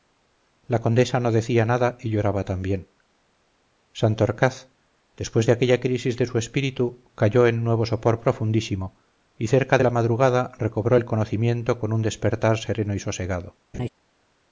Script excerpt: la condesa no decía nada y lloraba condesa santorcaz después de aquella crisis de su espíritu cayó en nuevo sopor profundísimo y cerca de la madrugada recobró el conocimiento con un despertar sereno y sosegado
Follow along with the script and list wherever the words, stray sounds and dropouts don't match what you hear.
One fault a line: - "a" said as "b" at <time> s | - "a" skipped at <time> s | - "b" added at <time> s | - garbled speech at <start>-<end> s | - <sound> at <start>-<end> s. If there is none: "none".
- "condesa" said as "también" at 2.4 s
- laugh at 13.7-13.9 s